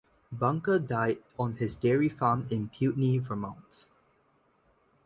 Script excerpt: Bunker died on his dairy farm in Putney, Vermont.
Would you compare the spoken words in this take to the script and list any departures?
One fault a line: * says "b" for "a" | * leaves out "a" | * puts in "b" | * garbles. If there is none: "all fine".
all fine